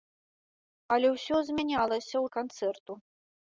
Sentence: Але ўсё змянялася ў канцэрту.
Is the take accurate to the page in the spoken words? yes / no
yes